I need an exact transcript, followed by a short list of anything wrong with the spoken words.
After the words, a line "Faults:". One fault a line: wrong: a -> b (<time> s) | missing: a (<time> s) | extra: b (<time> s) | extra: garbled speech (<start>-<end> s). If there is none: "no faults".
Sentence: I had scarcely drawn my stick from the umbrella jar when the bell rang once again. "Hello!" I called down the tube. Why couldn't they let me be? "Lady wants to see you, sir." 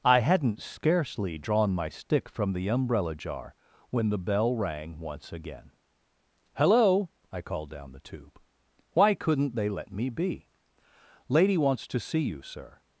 I hadn't scarcely drawn my stick from the umbrella jar when the bell rang once again. "Hello!" I called down the tube. Why couldn't they let me be? "Lady wants to see you, sir."
Faults:
wrong: had -> hadn't (0.2 s)